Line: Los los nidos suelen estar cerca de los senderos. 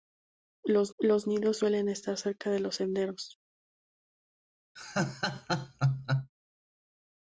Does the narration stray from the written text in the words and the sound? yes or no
yes